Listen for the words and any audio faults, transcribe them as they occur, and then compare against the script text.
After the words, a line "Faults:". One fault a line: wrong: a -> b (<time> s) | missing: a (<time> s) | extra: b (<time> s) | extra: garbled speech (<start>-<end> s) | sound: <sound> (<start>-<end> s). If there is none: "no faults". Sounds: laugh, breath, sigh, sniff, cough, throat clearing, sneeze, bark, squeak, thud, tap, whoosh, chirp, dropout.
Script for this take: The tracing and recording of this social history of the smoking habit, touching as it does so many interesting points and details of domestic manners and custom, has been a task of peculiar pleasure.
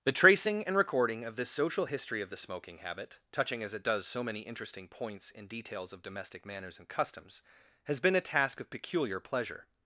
The tracing and recording of this social history of the smoking habit, touching as it does so many interesting points and details of domestic manners and customs, has been a task of peculiar pleasure.
Faults:
wrong: custom -> customs (6.9 s)